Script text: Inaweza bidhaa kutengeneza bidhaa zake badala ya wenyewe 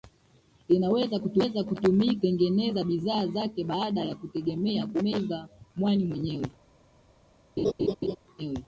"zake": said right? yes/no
yes